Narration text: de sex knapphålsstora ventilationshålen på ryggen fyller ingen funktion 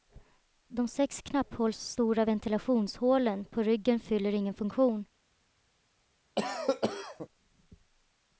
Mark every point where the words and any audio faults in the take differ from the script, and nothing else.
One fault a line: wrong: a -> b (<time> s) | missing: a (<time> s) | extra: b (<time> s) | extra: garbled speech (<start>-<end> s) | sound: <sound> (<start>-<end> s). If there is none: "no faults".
sound: cough (6.4-7.3 s)